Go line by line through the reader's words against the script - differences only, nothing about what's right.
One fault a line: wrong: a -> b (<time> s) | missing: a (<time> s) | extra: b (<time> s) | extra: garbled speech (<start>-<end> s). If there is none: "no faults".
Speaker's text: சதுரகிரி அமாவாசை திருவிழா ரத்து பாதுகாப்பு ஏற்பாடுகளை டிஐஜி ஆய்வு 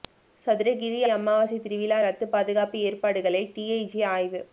no faults